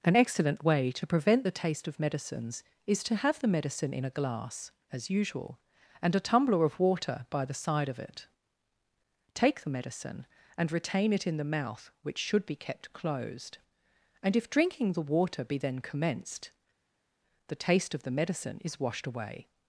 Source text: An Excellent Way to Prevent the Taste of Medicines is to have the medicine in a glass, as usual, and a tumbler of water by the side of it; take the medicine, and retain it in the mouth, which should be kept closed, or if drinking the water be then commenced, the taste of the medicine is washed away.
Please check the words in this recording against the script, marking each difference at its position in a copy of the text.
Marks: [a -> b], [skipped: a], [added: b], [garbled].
An Excellent Way to Prevent the Taste of Medicines is to have the medicine in a glass, as usual, and a tumbler of water by the side of it; take the medicine, and retain it in the mouth, which should be kept closed, [or -> and] if drinking the water be then commenced, the taste of the medicine is washed away.